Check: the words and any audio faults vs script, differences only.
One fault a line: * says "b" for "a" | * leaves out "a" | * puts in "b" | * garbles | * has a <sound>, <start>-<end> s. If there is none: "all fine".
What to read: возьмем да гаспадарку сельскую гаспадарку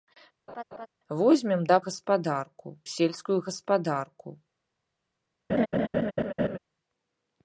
* has a laugh, 0.5-0.9 s
* has a laugh, 5.5-6.6 s